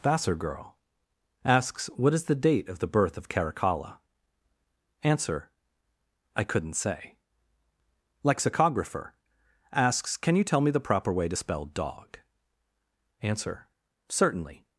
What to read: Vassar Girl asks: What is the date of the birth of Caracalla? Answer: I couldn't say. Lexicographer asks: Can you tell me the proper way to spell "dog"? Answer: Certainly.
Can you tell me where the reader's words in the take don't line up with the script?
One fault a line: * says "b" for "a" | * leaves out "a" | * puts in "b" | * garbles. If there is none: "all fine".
all fine